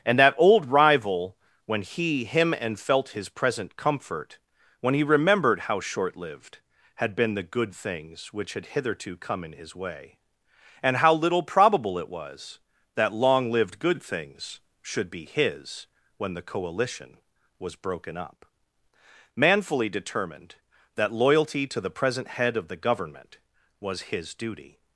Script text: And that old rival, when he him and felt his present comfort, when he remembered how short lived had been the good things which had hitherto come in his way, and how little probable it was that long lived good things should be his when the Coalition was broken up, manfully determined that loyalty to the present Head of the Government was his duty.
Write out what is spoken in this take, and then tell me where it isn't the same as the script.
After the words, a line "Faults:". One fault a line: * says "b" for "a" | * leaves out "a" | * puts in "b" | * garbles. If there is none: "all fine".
And that old rival, when he him and felt his present comfort, when he remembered how short lived had been the good things which had hitherto come in his way, and how little probable it was that long lived good things should be his when the Coalition was broken up, manfully determined that loyalty to the present Head of the Government was his duty.
Faults:
all fine